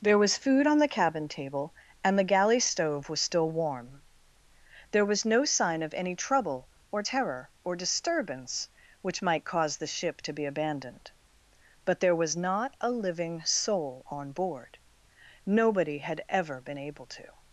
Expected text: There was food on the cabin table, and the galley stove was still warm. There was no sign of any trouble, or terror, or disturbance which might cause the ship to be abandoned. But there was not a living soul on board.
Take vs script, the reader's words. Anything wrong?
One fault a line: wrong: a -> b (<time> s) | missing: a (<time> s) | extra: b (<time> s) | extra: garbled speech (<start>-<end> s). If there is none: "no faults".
extra: Nobody had ever been able to (15.4 s)